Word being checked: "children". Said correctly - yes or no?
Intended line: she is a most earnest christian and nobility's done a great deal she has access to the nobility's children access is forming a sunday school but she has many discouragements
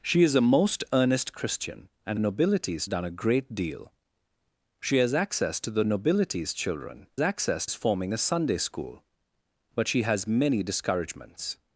yes